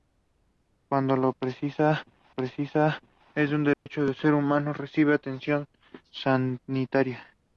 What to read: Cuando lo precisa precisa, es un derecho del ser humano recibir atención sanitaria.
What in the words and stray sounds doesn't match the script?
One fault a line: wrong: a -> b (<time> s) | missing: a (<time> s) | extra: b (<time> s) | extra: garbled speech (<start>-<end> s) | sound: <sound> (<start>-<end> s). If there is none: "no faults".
sound: dropout (3.7-3.9 s)